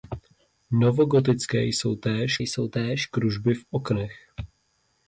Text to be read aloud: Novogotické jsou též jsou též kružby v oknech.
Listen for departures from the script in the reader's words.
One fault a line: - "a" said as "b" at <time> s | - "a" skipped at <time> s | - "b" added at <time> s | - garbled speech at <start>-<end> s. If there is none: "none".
none